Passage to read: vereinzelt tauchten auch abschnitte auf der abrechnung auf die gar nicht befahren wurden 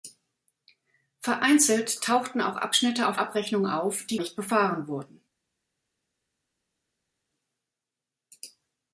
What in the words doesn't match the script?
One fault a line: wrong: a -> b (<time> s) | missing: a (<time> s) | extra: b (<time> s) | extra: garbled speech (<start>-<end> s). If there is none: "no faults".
missing: der (3.2 s)
missing: gar (4.2 s)